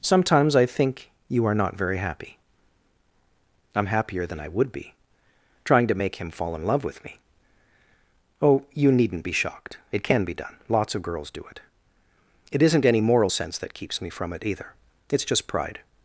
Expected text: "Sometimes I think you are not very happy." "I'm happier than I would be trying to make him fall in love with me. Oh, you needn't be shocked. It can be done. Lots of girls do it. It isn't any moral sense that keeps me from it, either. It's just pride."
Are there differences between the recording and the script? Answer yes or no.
no